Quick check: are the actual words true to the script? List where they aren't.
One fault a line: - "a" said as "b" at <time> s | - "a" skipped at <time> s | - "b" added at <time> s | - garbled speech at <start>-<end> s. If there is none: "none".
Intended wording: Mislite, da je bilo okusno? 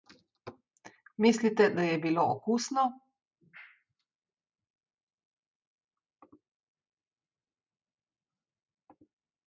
none